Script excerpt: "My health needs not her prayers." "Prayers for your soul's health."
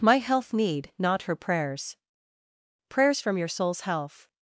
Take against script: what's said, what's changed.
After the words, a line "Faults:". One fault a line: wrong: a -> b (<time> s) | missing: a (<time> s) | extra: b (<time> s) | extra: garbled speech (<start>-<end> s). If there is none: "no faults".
"My health need not her prayers." "Prayers from your soul's health."
Faults:
wrong: needs -> need (0.5 s)
wrong: for -> from (3.2 s)